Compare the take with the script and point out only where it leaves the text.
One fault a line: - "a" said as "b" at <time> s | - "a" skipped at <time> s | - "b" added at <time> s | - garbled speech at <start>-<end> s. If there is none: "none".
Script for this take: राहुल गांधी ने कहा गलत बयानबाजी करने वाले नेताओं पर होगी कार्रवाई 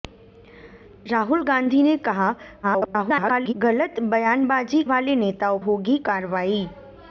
- garbled speech at 2.6-3.5 s
- "करने" skipped at 4.8 s
- "पर" skipped at 5.6 s